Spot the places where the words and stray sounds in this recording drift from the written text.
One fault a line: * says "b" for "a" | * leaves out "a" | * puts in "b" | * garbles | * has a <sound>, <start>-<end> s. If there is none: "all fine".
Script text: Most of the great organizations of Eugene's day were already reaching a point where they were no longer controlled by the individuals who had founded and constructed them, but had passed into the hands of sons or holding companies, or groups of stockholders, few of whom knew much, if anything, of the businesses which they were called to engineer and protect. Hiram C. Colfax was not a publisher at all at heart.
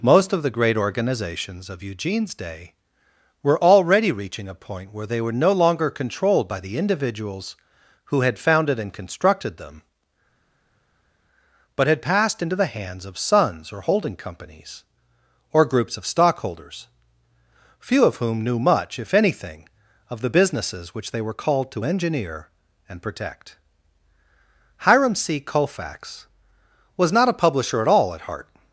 all fine